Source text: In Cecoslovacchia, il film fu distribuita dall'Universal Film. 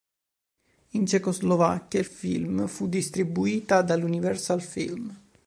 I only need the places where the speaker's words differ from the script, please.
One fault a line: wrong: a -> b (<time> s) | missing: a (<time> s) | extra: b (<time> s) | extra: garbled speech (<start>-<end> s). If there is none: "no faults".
no faults